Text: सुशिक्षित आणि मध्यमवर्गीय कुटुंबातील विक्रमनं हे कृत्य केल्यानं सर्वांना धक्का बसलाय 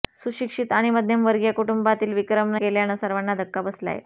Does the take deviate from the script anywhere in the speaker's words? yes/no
yes